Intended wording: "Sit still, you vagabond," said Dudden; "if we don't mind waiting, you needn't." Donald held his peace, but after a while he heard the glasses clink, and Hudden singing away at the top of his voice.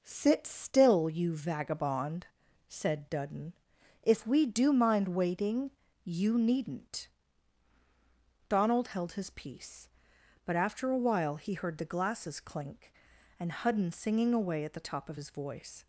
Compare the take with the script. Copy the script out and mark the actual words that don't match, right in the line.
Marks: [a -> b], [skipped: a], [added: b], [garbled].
"Sit still, you vagabond," said Dudden; "if we [don't -> do] mind waiting, you needn't." Donald held his peace, but after a while he heard the glasses clink, and Hudden singing away at the top of his voice.